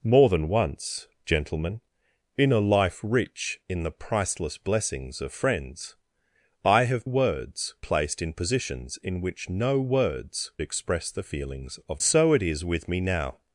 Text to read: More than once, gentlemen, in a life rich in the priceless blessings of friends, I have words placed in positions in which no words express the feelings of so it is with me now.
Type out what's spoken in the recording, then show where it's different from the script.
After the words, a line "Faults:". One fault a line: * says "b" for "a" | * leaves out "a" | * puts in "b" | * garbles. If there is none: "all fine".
More than once, gentlemen, in a life rich in the priceless blessings of friends, I have words placed in positions in which no words express the feelings of so it is with me now.
Faults:
all fine